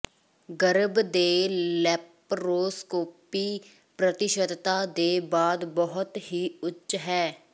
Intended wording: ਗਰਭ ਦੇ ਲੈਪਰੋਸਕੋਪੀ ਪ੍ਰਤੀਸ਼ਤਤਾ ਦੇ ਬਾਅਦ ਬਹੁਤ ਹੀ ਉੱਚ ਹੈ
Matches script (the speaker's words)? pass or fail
pass